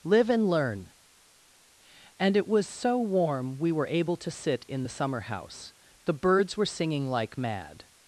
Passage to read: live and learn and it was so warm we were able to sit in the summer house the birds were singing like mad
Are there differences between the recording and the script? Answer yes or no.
no